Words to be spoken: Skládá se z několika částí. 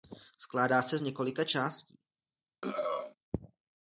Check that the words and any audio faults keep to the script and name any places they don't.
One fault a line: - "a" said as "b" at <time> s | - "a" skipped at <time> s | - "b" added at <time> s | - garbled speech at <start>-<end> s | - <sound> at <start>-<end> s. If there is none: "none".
- throat clearing at 2.6-3.2 s